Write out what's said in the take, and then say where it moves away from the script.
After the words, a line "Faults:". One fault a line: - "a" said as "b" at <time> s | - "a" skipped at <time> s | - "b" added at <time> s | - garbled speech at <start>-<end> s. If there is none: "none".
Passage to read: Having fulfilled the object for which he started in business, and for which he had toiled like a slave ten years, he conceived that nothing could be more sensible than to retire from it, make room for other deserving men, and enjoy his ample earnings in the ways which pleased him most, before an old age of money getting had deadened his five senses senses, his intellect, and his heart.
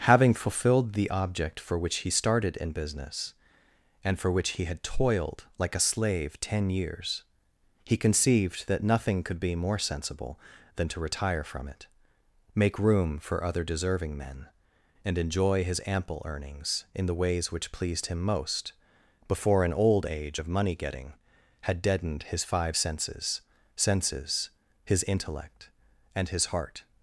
Having fulfilled the object for which he started in business, and for which he had toiled like a slave ten years, he conceived that nothing could be more sensible than to retire from it, make room for other deserving men, and enjoy his ample earnings in the ways which pleased him most, before an old age of money getting had deadened his five senses senses, his intellect, and his heart.
Faults:
none